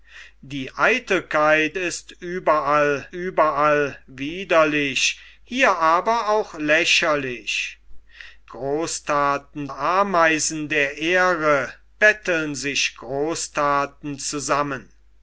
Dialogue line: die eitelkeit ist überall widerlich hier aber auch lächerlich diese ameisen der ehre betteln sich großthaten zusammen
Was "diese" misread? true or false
true